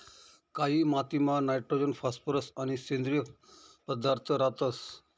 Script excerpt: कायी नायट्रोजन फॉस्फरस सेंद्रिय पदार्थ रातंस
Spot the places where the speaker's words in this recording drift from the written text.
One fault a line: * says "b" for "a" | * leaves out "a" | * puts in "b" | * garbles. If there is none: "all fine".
* puts in "मातीमा"
* puts in "आणि"